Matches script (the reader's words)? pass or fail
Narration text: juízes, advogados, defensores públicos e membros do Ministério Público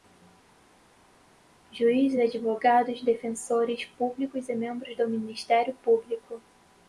pass